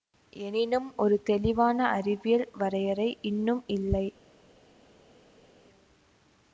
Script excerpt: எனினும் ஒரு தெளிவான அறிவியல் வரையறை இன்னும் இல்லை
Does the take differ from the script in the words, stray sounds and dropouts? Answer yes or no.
no